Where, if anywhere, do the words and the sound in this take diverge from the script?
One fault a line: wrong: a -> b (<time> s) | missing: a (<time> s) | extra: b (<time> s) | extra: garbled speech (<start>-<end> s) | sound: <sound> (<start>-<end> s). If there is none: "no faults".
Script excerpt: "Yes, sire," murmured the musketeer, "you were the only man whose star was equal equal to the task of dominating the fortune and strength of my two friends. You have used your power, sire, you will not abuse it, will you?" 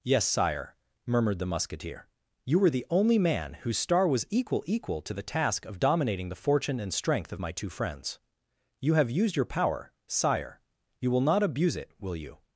no faults